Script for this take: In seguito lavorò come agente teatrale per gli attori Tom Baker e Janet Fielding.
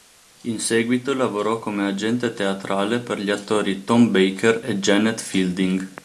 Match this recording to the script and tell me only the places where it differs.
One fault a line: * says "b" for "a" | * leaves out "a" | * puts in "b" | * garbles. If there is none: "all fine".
all fine